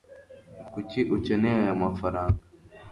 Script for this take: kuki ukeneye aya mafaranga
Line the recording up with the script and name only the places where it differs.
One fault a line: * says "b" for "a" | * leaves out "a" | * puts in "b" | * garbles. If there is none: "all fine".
all fine